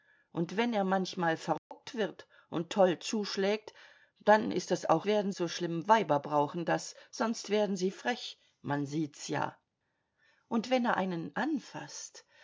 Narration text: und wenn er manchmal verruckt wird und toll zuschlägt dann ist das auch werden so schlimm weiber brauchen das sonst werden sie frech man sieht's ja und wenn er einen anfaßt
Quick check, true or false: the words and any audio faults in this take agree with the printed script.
false